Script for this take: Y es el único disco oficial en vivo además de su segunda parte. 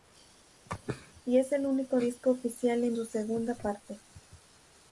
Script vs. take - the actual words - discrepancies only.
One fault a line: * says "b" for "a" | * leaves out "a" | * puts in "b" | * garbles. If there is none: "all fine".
* leaves out "vivo además de"